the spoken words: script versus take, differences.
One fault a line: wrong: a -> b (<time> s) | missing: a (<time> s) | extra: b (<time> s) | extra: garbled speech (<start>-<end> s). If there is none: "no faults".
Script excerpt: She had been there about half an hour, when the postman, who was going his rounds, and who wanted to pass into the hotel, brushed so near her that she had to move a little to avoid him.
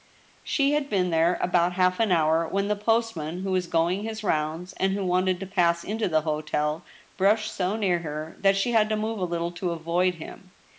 no faults